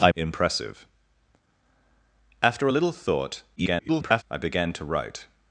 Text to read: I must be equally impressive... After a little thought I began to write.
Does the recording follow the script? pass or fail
fail